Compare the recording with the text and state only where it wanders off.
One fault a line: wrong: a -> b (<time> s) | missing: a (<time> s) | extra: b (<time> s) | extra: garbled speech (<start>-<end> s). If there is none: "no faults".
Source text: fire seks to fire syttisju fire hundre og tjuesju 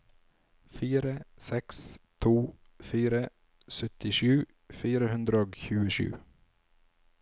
no faults